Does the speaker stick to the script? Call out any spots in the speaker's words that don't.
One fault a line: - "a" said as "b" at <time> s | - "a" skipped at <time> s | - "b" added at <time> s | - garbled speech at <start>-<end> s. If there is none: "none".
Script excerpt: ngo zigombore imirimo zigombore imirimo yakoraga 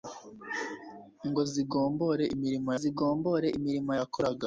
none